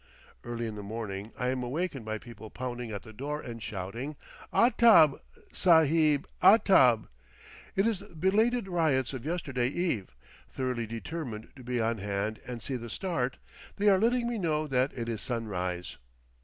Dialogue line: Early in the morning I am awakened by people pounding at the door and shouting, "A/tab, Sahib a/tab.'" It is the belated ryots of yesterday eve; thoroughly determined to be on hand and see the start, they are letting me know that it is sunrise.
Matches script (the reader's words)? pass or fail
pass